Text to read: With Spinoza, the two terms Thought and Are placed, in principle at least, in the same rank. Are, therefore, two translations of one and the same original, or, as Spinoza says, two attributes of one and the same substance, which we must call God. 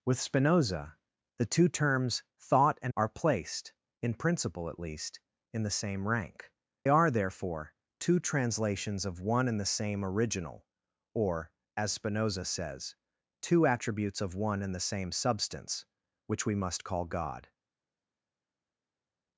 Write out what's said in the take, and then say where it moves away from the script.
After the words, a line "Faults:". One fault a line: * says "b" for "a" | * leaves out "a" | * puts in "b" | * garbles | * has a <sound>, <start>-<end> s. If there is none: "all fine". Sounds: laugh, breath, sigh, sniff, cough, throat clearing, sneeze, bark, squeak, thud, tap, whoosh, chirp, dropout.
With Spinoza, the two terms Thought and Are placed, in principle at least, in the same rank. Are, therefore, two translations of one and the same original, or, as Spinoza says, two attributes of one and the same substance, which we must call God.
Faults:
all fine